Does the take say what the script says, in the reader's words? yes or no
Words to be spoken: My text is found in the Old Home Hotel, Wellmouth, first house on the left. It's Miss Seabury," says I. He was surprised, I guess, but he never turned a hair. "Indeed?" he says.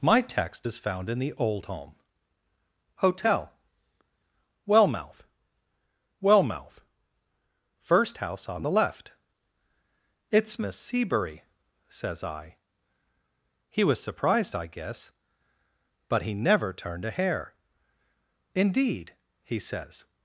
no